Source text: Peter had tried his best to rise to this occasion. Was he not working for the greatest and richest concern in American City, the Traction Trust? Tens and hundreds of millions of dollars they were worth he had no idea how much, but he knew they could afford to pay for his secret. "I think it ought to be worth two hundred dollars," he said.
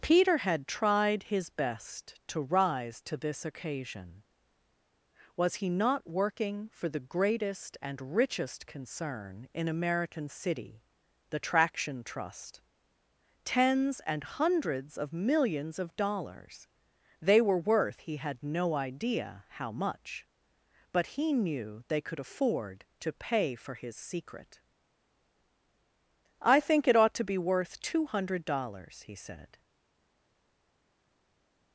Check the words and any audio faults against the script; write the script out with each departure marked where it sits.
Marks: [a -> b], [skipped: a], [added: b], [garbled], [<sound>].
Peter had tried his best to rise to this occasion. Was he not working for the greatest and richest concern in American City, the Traction Trust? Tens and hundreds of millions of dollars they were worth he had no idea how much, but he knew they could afford to pay for his secret. "I think it ought to be worth two hundred dollars," he said.